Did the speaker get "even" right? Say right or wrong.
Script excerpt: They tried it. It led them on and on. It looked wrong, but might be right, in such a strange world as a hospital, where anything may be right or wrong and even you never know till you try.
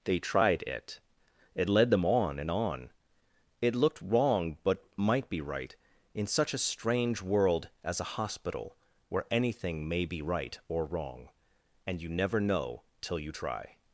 wrong